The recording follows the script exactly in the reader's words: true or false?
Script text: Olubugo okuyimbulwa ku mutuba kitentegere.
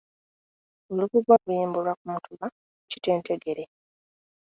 true